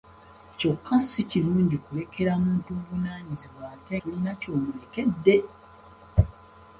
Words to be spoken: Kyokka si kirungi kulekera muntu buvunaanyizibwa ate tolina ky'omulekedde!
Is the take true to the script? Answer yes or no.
yes